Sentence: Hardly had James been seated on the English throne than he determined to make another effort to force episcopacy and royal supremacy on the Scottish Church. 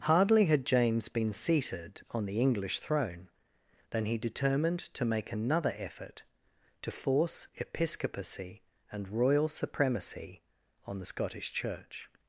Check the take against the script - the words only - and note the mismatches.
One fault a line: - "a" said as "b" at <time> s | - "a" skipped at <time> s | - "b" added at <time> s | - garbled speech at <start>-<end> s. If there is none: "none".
none